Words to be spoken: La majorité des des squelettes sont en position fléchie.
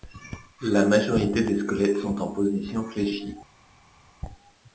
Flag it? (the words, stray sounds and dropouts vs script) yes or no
yes